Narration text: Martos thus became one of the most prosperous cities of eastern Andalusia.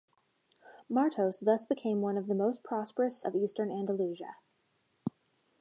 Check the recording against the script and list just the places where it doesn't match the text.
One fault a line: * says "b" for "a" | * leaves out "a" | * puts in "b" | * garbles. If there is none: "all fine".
* leaves out "cities"